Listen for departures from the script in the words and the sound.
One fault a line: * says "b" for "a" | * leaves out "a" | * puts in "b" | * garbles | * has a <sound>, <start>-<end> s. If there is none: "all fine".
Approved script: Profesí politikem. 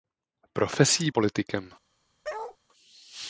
* has a bark, 2.2-2.6 s